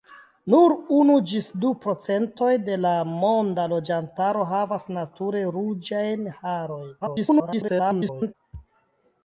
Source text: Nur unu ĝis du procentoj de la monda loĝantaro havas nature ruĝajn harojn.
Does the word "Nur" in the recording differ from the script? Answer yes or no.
no